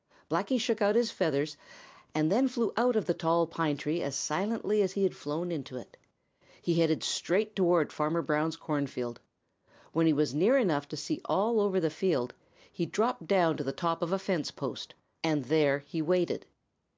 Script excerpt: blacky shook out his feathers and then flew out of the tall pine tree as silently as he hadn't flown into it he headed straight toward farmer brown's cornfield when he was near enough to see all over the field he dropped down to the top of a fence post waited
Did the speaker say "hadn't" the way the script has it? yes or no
no